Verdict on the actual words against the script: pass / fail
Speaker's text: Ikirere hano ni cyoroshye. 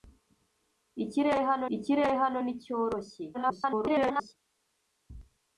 fail